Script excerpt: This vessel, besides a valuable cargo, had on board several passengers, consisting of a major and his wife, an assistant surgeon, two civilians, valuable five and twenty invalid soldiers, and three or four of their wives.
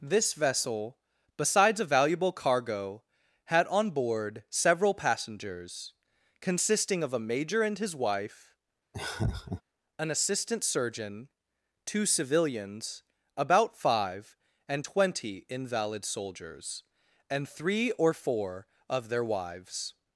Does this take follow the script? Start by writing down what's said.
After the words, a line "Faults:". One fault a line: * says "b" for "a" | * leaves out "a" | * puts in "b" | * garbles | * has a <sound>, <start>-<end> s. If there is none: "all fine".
This vessel, besides a valuable cargo, had on board several passengers, consisting of a major and his wife, an assistant surgeon, two civilians, about five and twenty invalid soldiers, and three or four of their wives.
Faults:
* has a laugh, 8.9-9.6 s
* says "about" for "valuable"